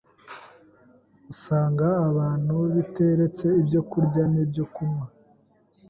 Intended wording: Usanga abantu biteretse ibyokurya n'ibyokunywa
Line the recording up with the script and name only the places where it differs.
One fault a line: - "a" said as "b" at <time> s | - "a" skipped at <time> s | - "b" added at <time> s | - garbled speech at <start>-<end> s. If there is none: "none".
none